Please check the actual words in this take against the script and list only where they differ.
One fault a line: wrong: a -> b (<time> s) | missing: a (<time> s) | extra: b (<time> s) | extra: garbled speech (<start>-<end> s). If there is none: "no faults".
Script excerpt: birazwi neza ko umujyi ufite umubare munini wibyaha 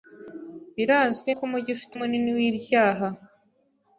missing: neza (1.3 s)
missing: umubare (1.9 s)